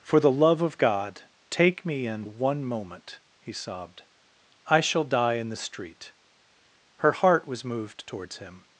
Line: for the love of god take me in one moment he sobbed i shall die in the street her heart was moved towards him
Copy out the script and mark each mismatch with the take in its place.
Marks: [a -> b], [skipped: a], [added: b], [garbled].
for the love of god take me in one moment he sobbed i shall die in the street her heart was moved towards him